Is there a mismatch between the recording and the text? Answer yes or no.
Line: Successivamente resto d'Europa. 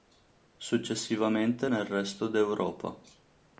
yes